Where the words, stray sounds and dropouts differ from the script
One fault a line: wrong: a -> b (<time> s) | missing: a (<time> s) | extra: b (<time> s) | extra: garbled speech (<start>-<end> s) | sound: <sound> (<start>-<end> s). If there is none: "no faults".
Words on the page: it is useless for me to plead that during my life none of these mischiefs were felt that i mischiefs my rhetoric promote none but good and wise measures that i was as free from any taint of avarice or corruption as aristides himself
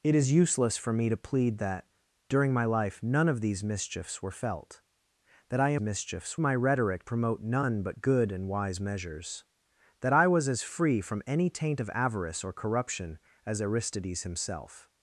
no faults